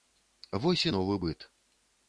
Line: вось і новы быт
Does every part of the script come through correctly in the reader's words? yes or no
yes